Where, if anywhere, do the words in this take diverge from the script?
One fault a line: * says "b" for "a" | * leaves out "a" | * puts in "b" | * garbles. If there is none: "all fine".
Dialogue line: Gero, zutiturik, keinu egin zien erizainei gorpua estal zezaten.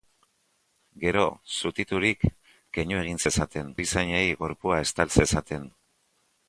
* says "zezaten" for "zien"